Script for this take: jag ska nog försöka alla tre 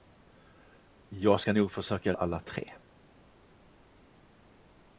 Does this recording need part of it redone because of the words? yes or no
no